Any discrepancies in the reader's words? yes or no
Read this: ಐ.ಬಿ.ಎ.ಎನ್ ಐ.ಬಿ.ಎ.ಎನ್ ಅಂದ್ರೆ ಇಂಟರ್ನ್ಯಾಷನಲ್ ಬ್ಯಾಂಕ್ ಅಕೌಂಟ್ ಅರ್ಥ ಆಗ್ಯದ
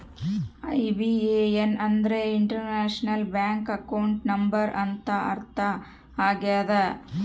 yes